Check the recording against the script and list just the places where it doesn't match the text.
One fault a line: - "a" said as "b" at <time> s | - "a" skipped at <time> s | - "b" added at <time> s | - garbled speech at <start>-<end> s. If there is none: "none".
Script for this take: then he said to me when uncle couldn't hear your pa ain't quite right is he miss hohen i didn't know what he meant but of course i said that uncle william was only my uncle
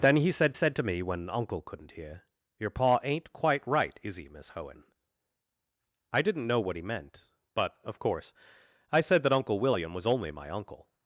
- "said" added at 0.5 s